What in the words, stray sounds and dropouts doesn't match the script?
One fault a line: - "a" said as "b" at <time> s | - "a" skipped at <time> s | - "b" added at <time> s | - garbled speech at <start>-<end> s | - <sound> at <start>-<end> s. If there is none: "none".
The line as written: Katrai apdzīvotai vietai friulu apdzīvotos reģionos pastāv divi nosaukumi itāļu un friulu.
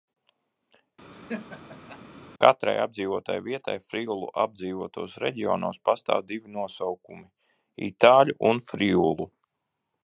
- laugh at 1.1-2.0 s